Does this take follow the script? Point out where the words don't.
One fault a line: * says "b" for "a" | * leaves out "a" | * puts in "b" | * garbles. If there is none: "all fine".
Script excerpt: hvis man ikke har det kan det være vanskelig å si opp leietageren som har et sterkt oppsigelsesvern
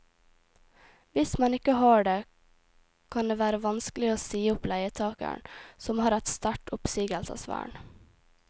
all fine